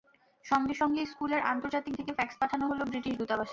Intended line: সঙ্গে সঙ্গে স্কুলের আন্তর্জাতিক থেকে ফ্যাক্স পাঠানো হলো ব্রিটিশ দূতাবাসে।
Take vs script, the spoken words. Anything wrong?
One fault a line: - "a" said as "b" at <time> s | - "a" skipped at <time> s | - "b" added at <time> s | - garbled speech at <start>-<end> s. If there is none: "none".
none